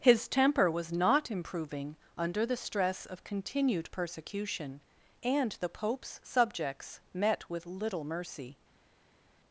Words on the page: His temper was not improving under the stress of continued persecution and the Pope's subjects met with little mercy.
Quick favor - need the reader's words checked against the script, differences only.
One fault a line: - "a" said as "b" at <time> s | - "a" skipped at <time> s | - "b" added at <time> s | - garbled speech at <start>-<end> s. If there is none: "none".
none